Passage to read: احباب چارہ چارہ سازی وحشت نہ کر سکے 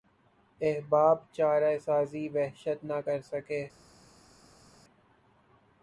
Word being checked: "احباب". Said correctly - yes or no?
yes